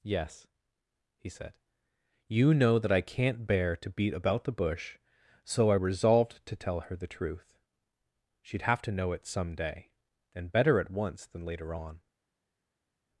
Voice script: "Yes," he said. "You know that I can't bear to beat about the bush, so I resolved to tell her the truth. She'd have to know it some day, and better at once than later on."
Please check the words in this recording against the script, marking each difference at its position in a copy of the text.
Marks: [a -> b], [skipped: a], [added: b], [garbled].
"Yes," he said. "You know that I can't bear to beat about the bush, so I resolved to tell her the truth. She'd have to know it some day, and better at once than later on."